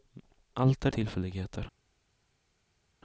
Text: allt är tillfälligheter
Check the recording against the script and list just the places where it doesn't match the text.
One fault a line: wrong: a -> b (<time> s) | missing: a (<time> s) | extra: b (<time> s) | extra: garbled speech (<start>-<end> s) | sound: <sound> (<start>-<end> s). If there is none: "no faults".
no faults